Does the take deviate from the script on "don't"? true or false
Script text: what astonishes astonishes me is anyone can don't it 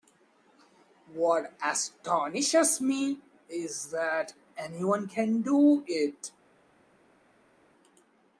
true